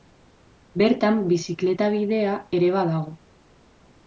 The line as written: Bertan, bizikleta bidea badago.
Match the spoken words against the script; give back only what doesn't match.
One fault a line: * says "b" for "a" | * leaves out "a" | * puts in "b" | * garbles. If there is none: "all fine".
* puts in "ere"